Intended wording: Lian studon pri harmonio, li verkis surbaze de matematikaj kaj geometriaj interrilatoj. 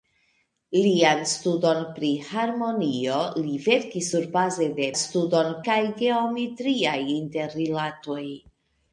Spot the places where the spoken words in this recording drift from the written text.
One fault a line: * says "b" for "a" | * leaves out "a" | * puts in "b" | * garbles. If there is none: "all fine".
* says "studon" for "matematikaj"